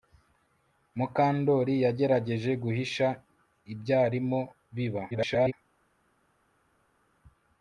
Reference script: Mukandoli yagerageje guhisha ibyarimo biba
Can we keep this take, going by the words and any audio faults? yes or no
no